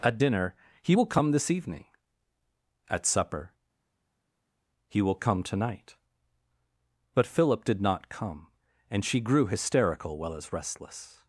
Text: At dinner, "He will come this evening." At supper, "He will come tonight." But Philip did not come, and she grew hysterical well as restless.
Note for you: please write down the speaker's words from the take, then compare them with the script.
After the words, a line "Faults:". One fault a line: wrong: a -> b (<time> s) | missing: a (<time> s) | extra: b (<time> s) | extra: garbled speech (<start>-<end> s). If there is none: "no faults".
At dinner, "He will come this evening." At supper, "He will come tonight." But Philip did not come, and she grew hysterical well as restless.
Faults:
no faults